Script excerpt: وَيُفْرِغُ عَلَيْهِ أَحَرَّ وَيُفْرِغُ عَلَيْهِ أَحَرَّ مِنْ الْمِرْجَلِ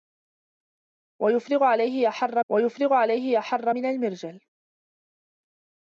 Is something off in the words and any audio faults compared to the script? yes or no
no